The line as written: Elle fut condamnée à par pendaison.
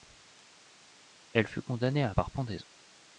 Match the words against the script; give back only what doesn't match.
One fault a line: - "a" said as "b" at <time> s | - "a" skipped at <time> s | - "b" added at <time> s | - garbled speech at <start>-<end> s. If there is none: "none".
none